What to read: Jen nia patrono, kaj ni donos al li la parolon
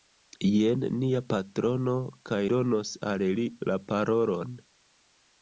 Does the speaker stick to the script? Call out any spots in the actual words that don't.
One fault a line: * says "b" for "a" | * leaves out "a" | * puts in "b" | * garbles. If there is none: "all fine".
* leaves out "ni"